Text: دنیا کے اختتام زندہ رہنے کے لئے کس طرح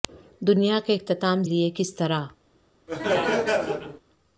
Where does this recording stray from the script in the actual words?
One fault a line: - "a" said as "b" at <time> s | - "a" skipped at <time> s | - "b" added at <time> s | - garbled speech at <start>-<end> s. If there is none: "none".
- "زندہ رہنے کے" skipped at 1.4 s